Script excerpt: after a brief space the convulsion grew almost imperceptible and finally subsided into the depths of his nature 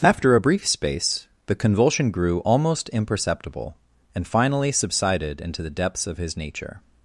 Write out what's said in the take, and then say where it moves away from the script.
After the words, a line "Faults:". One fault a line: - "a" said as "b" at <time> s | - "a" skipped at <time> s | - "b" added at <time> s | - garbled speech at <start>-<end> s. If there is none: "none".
after a brief space the convulsion grew almost imperceptible and finally subsided into the depths of his nature
Faults:
none